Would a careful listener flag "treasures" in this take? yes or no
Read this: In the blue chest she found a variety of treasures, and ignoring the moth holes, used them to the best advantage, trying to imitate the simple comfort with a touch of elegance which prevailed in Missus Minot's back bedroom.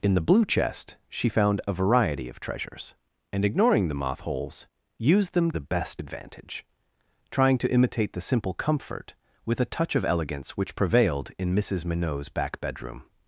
no